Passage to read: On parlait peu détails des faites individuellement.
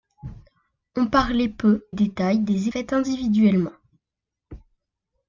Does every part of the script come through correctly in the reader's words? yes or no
yes